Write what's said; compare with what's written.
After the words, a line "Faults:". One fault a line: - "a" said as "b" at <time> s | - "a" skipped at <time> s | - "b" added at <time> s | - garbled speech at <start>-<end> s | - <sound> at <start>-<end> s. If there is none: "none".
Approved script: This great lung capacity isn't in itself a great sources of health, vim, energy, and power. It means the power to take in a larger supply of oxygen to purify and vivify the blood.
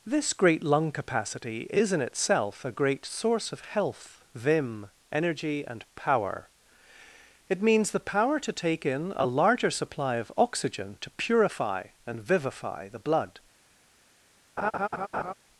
This great lung capacity is in itself a great source of health, vim, energy, and power. It means the power to take in a larger supply of oxygen to purify and vivify the blood.
Faults:
- "isn't" said as "is" at 1.7 s
- "sources" said as "source" at 3.0 s
- laugh at 14.6-15.3 s